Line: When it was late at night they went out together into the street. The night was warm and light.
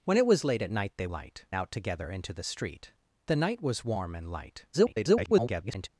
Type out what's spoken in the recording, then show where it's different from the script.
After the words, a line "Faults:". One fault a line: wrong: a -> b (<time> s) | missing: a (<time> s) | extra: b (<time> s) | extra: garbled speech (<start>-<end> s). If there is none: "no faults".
When it was late at night they light out together into the street. The night was warm and light. [garbled]
Faults:
wrong: went -> light (1.1 s)
extra: garbled speech (4.7-5.9 s)